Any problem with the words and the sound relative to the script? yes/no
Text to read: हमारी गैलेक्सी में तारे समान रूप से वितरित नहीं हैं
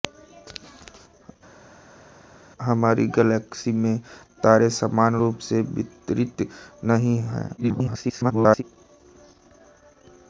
yes